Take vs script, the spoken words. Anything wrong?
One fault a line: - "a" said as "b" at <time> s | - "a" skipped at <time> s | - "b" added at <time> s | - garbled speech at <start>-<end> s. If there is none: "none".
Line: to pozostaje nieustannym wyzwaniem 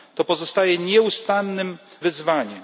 none